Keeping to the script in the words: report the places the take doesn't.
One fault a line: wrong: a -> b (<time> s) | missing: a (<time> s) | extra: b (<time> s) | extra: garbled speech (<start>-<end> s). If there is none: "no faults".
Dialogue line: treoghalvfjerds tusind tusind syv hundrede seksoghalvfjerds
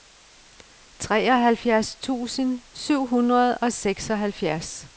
missing: tusind (2.6 s)
extra: og (3.6 s)